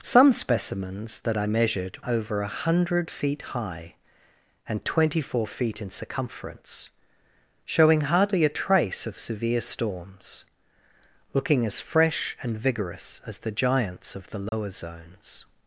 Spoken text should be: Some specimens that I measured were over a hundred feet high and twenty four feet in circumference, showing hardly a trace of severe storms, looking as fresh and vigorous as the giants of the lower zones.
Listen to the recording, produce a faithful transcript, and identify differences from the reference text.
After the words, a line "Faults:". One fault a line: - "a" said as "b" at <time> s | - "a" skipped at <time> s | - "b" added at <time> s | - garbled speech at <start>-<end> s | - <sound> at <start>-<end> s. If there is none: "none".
Some specimens that I measured over a hundred feet high and twenty four feet in circumference, showing hardly a trace of severe storms, looking as fresh and vigorous as the giants of the lower zones.
Faults:
- "were" skipped at 2.0 s
- dropout at 14.5-14.5 s